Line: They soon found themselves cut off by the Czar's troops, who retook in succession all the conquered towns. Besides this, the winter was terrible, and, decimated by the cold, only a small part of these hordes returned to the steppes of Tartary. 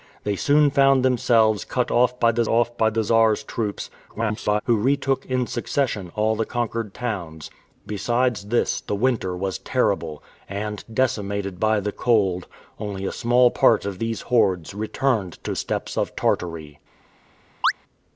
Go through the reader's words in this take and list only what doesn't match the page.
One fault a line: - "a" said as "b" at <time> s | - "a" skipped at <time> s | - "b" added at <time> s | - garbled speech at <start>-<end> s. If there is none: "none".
- "off by the" added at 2.5 s
- garbled speech at 4.1-4.6 s
- "the" skipped at 15.5 s